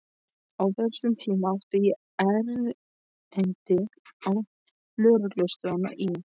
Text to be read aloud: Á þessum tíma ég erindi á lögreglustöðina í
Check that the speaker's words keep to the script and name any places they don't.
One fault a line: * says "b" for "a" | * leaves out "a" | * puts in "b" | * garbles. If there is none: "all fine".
* puts in "átti"